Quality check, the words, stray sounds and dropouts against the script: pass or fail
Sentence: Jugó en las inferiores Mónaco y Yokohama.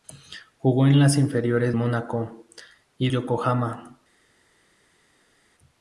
pass